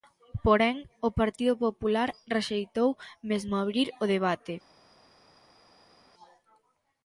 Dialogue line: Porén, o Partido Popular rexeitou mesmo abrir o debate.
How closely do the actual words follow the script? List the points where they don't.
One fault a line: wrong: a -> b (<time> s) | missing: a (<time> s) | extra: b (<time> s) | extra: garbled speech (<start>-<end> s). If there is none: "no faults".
no faults